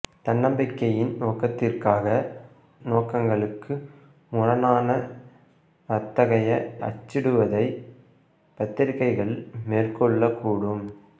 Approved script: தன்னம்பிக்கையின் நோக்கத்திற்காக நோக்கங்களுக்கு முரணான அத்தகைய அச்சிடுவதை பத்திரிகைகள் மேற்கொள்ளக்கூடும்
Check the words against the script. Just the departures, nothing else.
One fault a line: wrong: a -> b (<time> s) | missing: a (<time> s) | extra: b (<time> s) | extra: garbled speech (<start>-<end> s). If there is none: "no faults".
no faults